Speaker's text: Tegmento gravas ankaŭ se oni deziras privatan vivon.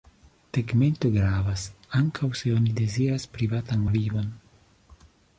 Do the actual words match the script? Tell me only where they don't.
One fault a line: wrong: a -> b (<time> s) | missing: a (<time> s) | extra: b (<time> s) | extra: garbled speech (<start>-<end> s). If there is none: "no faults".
no faults